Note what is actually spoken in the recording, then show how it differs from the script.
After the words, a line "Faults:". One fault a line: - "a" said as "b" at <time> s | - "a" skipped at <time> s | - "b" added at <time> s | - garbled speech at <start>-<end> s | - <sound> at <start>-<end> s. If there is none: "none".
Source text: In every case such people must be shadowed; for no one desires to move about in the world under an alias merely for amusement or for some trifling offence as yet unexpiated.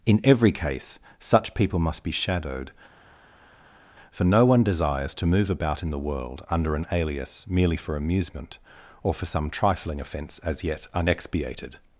In every case such people must be shadowed; for no one desires to move about in the world under an alias merely for amusement or for some trifling offence as yet unexpiated.
Faults:
none